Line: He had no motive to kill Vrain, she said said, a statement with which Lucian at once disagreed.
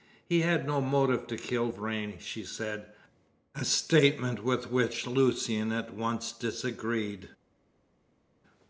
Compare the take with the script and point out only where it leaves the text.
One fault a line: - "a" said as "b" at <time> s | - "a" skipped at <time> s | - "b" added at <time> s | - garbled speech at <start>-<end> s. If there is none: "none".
- "said" skipped at 2.9 s